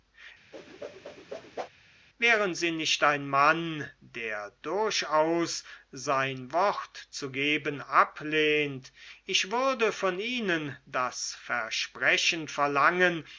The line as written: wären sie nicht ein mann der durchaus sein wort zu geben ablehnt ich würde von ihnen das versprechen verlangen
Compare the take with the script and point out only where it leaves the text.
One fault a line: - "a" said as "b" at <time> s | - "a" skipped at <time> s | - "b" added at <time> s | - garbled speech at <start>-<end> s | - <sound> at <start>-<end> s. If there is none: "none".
- whoosh at 0.5-1.7 s